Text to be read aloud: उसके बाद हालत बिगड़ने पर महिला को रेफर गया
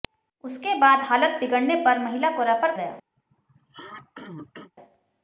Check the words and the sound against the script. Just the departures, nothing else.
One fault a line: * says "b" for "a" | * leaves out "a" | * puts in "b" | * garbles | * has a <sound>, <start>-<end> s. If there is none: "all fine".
* has a throat clearing, 3.2-4.7 s